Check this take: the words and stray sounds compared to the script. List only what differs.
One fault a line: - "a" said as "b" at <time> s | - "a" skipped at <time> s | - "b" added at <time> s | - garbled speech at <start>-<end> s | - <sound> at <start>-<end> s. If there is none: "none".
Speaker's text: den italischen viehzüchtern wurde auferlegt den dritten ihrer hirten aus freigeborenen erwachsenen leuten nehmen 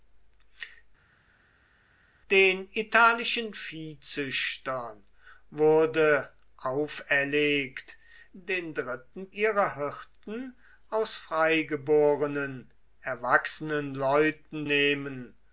none